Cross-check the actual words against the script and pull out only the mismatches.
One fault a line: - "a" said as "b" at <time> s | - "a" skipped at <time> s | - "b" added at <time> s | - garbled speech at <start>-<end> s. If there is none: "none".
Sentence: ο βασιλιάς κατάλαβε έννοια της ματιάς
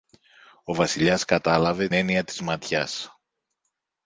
none